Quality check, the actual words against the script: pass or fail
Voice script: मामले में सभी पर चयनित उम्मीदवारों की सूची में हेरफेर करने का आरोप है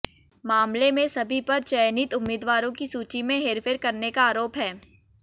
pass